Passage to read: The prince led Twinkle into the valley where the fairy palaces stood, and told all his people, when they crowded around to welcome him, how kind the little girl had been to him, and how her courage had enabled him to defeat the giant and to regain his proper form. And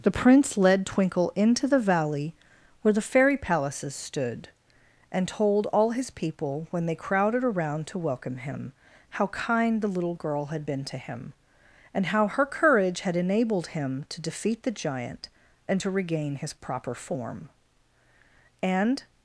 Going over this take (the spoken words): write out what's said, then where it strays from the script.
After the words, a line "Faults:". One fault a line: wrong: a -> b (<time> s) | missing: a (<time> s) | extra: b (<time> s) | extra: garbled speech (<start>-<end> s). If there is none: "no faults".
The prince led Twinkle into the valley where the fairy palaces stood, and told all his people, when they crowded around to welcome him, how kind the little girl had been to him, and how her courage had enabled him to defeat the giant and to regain his proper form. And
Faults:
no faults